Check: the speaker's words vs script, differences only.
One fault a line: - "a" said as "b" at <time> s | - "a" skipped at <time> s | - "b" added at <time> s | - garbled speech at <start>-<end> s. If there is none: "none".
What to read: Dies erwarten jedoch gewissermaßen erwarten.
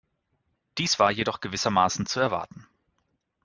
- "erwarten" said as "war" at 1.0 s
- "zu" added at 2.1 s